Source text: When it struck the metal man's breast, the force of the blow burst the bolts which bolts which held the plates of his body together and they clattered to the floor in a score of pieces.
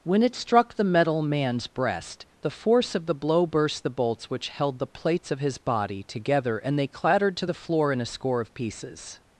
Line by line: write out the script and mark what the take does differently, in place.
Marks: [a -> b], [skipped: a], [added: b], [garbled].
When it struck the metal man's breast, the force of the blow burst the bolts which [skipped: bolts which] held the plates of his body together and they clattered to the floor in a score of pieces.